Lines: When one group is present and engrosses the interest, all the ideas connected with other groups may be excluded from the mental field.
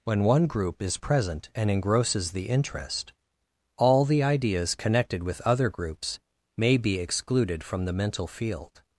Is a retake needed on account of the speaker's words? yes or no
no